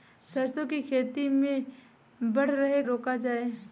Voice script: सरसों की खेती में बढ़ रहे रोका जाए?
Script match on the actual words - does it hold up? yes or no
yes